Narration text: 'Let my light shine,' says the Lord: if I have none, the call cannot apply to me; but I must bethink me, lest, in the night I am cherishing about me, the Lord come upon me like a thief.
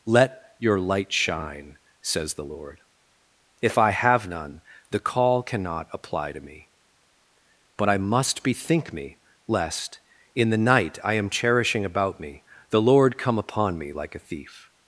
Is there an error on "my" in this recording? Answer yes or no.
yes